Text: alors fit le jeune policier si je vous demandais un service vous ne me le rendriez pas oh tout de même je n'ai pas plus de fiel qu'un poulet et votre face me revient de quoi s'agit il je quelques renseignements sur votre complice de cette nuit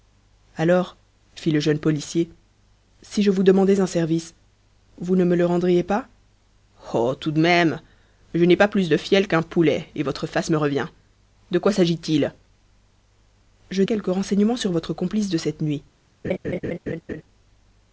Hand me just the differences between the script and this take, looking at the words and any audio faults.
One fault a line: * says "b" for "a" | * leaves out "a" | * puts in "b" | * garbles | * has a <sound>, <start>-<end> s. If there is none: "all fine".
* has a laugh, 16.2-17.2 s